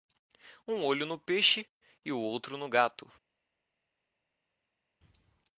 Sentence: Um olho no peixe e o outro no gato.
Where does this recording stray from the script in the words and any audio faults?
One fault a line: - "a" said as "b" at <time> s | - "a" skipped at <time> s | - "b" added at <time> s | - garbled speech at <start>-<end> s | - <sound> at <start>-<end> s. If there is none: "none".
none